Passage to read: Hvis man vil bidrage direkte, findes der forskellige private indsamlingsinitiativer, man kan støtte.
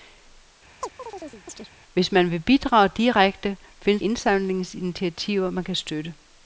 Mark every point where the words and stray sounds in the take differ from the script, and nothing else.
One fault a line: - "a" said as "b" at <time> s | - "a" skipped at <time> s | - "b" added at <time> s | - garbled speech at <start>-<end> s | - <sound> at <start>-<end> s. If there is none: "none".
- chirp at 0.8-1.7 s
- "der forskellige private" skipped at 4.0 s